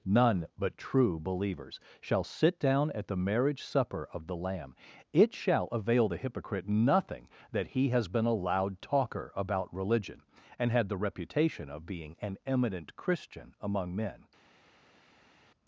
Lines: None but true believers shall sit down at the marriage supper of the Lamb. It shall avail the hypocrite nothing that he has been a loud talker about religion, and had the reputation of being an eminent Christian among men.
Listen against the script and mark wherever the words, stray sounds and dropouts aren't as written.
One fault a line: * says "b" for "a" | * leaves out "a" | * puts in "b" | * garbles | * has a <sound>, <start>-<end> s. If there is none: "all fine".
all fine